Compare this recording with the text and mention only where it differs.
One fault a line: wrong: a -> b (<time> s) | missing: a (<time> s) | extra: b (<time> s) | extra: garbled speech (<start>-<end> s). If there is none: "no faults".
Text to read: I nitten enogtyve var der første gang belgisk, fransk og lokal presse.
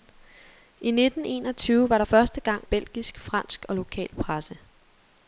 no faults